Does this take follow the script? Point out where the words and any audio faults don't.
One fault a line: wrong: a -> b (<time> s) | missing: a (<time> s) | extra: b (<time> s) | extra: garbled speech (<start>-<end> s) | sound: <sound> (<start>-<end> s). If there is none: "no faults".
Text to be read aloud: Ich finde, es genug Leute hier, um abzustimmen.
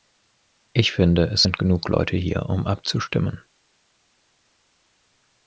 extra: sind (1.4 s)